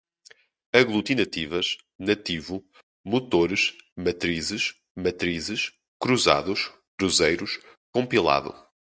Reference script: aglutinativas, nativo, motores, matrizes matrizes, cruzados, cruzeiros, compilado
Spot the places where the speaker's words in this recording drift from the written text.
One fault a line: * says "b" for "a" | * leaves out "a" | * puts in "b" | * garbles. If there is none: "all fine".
all fine